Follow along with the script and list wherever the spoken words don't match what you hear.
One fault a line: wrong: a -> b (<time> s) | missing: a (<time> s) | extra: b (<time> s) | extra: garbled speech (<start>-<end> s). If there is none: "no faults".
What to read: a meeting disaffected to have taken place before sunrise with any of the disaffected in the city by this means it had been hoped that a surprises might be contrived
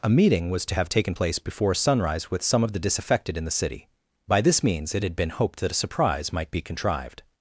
wrong: disaffected -> was (0.5 s)
wrong: any -> some (2.4 s)
wrong: surprises -> surprise (5.8 s)